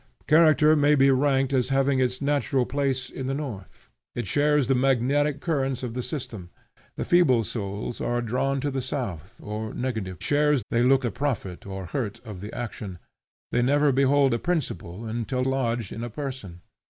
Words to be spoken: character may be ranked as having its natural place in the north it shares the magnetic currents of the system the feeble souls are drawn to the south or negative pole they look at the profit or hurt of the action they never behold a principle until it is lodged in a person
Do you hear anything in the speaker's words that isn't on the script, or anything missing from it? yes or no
yes